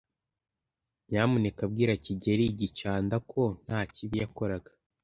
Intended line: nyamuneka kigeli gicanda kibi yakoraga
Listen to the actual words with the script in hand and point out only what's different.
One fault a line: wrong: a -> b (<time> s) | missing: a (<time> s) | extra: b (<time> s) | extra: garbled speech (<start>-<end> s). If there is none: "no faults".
extra: bwira (1.7 s)
extra: ko nta (3.3 s)